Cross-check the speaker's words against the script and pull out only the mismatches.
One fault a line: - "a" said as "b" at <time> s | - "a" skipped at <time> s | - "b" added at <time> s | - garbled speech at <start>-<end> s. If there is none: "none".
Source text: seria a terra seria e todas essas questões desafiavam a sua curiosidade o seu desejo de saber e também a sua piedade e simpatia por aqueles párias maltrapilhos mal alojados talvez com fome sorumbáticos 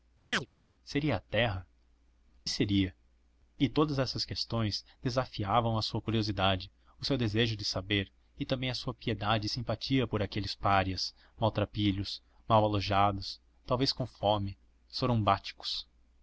none